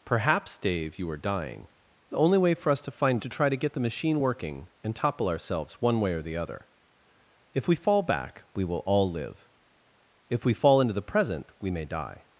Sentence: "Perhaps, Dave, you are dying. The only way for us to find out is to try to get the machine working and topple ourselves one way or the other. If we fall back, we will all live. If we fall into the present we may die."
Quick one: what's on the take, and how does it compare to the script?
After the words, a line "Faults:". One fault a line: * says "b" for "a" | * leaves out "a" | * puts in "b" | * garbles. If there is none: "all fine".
"Perhaps, Dave, you are dying. The only way for us to find to try to get the machine working and topple ourselves one way or the other. If we fall back, we will all live. If we fall into the present we may die."
Faults:
* leaves out "out is"